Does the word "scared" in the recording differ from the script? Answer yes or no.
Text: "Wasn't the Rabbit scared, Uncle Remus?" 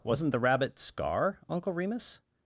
yes